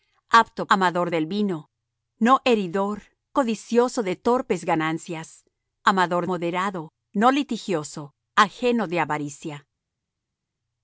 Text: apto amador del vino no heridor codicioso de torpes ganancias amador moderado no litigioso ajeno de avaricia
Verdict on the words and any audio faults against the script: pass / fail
pass